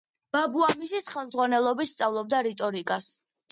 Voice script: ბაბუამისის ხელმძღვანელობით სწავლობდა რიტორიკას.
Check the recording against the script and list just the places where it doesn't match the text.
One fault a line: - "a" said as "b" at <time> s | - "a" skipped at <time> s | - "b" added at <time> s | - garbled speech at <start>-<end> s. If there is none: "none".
none